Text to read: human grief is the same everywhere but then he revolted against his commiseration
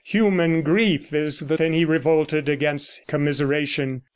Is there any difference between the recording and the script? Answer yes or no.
yes